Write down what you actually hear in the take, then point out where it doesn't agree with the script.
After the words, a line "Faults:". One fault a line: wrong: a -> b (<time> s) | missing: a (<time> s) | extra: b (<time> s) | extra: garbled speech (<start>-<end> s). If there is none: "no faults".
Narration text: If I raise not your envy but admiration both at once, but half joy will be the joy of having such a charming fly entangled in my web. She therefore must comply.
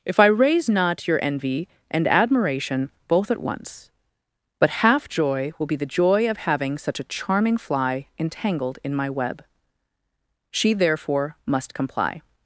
If I raise not your envy and admiration both at once, but half joy will be the joy of having such a charming fly entangled in my web. She therefore must comply.
Faults:
wrong: but -> and (1.9 s)